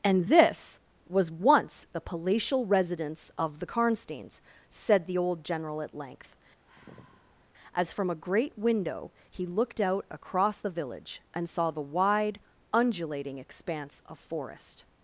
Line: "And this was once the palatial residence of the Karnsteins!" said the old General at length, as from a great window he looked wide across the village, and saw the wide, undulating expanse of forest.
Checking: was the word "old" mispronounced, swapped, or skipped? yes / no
no